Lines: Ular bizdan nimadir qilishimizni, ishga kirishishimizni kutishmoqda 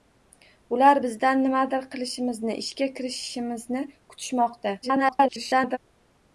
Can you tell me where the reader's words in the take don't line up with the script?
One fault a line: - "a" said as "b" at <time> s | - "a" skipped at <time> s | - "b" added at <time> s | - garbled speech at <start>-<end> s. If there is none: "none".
- garbled speech at 4.8-5.8 s